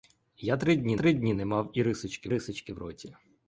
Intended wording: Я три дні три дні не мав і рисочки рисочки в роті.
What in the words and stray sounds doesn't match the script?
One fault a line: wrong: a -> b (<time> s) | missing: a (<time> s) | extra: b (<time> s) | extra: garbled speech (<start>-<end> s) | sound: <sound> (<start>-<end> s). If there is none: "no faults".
no faults